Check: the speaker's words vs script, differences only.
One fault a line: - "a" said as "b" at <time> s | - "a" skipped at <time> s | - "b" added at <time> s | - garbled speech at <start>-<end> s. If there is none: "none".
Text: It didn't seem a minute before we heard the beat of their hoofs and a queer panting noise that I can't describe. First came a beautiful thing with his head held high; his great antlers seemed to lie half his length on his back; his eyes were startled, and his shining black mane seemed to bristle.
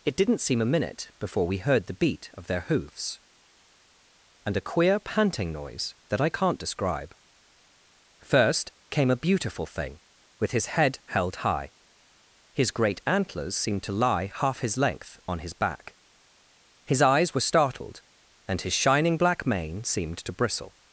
none